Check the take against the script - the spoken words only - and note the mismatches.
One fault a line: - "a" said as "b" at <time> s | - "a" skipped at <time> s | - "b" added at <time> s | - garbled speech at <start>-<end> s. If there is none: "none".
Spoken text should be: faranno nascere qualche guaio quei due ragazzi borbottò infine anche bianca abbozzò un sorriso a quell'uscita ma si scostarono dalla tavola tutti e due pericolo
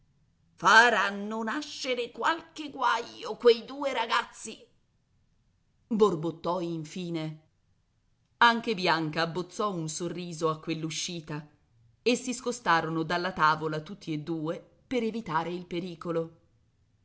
- "ma" said as "e" at 12.0 s
- "per evitare il" added at 14.9 s